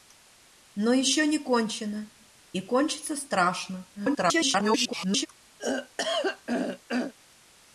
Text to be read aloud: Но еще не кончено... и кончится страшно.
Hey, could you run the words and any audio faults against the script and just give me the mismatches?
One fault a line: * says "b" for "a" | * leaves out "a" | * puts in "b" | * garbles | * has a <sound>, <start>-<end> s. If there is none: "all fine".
* garbles
* has a throat clearing, 5.6-7.1 s